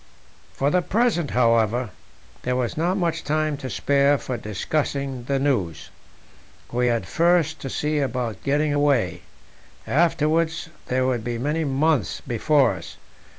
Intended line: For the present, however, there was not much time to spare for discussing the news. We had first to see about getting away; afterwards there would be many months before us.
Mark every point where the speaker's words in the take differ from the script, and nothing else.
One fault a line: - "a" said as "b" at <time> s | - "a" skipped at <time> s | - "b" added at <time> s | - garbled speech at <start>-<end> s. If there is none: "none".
none